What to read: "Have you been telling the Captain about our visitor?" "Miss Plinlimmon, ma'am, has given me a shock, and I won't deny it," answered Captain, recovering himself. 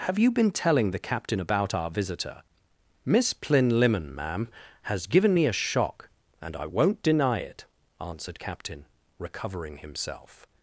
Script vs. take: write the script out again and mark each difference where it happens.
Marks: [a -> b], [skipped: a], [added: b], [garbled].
"Have you been telling the Captain about our visitor?" "Miss Plinlimmon, ma'am, has given me a shock, and I won't deny it," answered Captain, recovering himself.